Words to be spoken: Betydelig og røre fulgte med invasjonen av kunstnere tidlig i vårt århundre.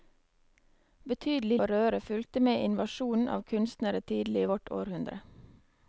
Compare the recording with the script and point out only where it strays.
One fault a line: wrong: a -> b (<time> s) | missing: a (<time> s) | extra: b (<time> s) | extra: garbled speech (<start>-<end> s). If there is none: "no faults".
no faults